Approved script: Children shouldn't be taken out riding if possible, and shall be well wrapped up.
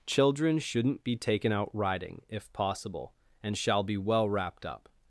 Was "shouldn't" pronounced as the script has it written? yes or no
yes